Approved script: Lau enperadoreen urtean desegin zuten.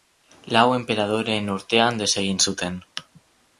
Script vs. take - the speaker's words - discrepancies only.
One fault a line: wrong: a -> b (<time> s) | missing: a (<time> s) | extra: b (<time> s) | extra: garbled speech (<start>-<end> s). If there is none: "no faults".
no faults